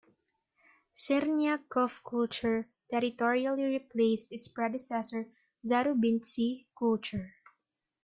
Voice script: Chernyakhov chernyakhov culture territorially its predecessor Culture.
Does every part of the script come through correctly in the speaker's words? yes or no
no